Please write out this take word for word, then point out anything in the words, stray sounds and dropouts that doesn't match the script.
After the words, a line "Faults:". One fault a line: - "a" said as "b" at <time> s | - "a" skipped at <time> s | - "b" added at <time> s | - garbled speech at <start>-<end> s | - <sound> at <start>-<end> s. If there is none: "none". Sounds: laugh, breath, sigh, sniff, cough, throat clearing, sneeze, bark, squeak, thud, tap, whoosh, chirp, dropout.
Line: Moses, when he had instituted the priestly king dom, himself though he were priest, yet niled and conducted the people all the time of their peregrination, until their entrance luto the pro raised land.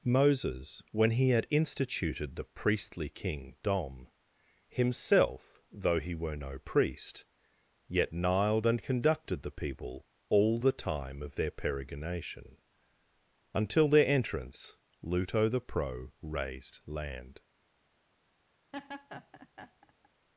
Moses, when he had instituted the priestly king dom, himself though he were no priest, yet niled and conducted the people all the time of their peregrination, until their entrance luto the pro raised land.
Faults:
- "no" added at 6.4 s
- laugh at 18.7-20.1 s